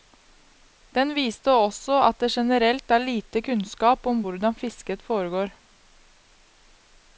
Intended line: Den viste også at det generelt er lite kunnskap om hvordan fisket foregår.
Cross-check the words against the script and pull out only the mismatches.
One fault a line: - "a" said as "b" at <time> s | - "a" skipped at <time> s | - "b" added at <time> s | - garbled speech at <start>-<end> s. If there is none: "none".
none